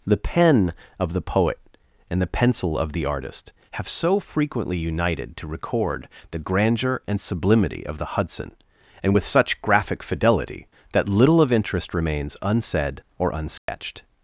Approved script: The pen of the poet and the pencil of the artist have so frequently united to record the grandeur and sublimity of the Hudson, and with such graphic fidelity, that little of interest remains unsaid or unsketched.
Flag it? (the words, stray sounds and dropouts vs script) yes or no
yes